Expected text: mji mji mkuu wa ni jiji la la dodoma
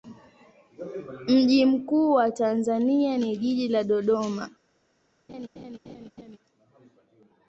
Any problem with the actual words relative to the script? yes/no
yes